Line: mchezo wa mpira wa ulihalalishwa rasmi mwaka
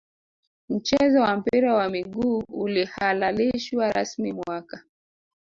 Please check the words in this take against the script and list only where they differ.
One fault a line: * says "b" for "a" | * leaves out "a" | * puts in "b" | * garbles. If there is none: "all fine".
* puts in "miguu"